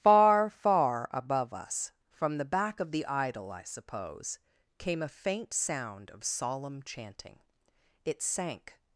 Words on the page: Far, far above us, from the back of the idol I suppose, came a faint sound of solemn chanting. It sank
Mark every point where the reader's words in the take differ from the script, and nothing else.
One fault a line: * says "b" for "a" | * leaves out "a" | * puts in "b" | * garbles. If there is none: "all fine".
all fine